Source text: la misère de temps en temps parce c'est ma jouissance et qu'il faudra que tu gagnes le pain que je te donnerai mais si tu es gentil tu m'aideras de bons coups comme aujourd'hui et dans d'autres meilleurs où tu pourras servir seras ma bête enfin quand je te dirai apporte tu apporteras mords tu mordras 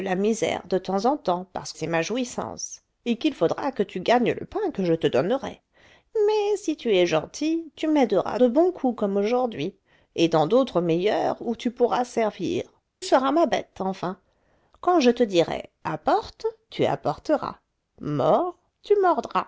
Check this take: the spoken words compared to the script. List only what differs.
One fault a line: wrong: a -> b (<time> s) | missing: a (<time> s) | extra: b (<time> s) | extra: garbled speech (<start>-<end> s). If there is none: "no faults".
no faults